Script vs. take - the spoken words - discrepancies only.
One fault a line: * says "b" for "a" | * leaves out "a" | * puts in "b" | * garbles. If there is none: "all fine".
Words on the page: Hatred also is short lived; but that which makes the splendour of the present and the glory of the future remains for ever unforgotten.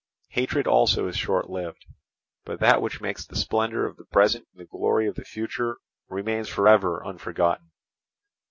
all fine